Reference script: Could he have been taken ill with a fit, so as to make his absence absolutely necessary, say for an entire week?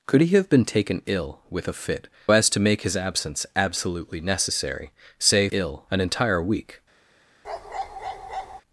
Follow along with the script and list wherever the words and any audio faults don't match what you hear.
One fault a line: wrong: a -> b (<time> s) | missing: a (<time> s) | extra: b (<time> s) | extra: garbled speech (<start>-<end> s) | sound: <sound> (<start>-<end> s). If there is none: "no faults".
missing: so (2.1 s)
wrong: for -> ill (5.5 s)
sound: bark (7.4-8.6 s)